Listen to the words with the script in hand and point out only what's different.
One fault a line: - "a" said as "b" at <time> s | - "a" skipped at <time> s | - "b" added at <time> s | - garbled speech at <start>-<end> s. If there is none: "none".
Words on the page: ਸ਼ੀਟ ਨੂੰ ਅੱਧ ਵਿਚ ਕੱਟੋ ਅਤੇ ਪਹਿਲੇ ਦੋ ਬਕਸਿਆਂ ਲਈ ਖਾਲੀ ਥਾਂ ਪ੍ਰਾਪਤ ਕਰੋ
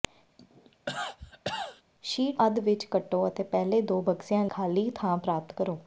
- "ਨੂੰ" skipped at 2.4 s
- "ਲਈ" skipped at 4.5 s